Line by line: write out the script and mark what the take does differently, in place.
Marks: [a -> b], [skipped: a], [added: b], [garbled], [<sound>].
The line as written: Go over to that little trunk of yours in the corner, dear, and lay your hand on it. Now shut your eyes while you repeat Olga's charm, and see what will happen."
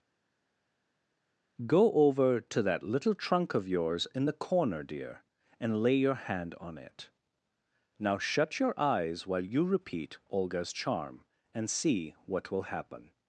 Go over to that little trunk of yours in the corner, dear, and lay your hand on it. Now shut your eyes while you repeat Olga's charm, and see what will happen."